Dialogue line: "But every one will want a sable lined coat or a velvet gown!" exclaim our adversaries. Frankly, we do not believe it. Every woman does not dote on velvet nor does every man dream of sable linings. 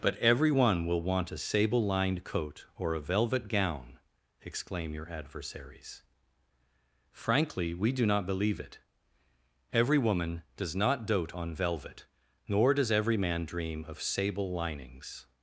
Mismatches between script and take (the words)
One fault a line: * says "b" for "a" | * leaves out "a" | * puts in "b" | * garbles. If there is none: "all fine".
* says "your" for "our"